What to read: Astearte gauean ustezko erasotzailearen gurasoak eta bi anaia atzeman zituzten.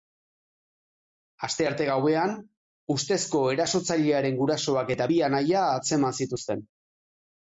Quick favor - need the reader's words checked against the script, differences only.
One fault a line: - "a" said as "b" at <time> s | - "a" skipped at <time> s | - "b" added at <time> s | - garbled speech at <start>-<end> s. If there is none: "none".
none